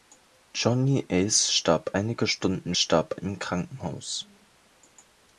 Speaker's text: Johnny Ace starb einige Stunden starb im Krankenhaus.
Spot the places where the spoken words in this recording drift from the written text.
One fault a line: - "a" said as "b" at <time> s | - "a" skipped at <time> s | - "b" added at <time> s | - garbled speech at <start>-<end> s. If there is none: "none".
none